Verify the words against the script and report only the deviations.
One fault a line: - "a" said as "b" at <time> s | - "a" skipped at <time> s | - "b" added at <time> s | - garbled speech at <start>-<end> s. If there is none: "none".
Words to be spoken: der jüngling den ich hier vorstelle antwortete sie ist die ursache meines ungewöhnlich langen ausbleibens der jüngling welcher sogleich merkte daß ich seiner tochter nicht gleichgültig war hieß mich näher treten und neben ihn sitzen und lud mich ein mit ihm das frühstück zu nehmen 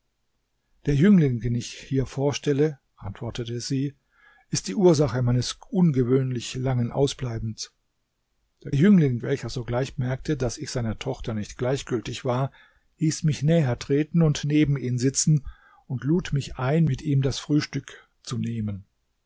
none